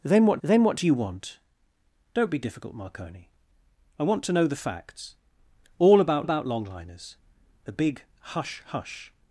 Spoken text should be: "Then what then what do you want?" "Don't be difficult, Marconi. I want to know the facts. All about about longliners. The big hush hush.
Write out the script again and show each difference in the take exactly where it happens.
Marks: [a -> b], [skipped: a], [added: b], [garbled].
"Then what then what do you want?" "Don't be difficult, Marconi. I want to know the facts. All about about longliners. The big hush hush.